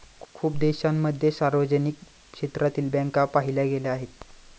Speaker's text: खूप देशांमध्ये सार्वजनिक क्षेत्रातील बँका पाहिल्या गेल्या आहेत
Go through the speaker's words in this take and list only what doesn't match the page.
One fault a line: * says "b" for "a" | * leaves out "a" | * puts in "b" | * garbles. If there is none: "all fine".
all fine